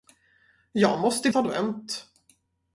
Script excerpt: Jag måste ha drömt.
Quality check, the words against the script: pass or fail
pass